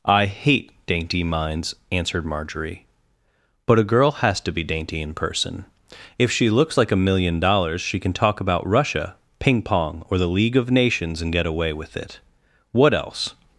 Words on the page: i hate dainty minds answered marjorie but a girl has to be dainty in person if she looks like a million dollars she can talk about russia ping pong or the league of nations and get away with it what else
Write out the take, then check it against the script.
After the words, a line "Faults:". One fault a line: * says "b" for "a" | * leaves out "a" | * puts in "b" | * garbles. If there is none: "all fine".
i hate dainty minds answered marjorie but a girl has to be dainty in person if she looks like a million dollars she can talk about russia ping pong or the league of nations and get away with it what else
Faults:
all fine